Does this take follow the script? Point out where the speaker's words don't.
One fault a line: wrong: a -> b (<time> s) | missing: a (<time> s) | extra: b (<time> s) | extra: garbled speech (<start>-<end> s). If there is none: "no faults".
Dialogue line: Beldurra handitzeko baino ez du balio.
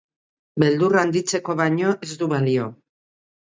no faults